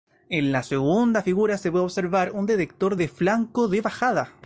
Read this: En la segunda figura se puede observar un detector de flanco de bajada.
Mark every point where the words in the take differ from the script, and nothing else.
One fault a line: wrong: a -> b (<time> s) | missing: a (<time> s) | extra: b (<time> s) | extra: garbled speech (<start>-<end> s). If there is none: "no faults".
no faults